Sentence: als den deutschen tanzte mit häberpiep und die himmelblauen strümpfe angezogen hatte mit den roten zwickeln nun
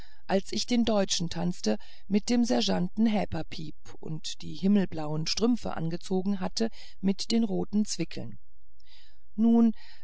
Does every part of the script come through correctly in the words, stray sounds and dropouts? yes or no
no